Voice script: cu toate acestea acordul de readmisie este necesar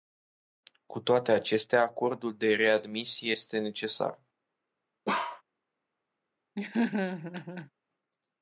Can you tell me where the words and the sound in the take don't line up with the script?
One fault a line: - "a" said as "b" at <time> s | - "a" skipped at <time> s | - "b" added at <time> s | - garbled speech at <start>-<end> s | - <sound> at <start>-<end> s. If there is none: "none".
- bark at 5.1-5.4 s
- laugh at 6.6-7.7 s